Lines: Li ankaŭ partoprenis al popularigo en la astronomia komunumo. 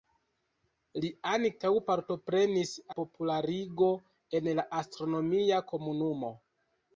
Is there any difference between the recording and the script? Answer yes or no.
yes